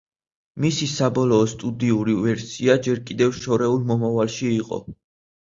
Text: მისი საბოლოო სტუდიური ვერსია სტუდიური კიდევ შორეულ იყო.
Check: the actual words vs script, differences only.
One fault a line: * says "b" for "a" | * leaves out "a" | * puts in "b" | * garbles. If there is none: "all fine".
* says "ჯერ" for "სტუდიური"
* puts in "მომავალში"